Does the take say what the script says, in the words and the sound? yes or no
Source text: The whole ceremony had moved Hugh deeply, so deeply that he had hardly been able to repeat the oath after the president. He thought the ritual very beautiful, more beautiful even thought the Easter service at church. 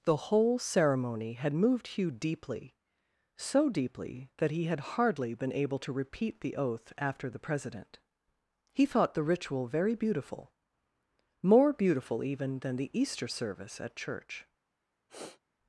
no